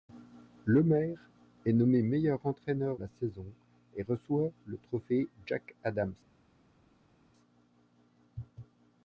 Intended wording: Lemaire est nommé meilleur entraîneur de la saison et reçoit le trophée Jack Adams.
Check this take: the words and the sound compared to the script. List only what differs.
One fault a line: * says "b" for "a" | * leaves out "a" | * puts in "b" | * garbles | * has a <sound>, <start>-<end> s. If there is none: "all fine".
* leaves out "de"